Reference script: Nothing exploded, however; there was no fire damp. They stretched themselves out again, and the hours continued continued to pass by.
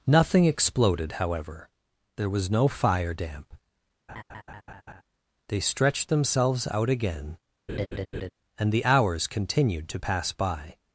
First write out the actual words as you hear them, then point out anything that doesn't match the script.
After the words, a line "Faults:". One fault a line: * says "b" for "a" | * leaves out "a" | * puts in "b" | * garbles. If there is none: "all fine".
Nothing exploded, however; there was no fire damp. They stretched themselves out again, and the hours continued to pass by.
Faults:
* leaves out "continued"